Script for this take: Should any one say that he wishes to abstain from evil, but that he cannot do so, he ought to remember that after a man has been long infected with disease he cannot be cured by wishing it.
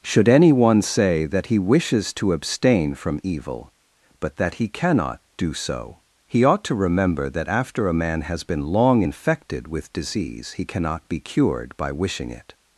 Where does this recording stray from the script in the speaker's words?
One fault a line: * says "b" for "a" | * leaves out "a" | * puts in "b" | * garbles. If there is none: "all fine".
all fine